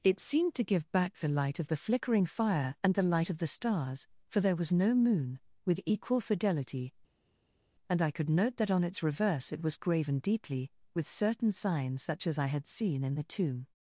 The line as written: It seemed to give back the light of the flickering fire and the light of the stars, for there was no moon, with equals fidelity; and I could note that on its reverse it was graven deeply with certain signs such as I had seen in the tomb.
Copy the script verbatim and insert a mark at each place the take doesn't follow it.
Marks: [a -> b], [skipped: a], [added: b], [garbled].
It seemed to give back the light of the flickering fire and the light of the stars, for there was no moon, with [equals -> equal] fidelity; and I could note that on its reverse it was graven deeply with certain signs such as I had seen in the tomb.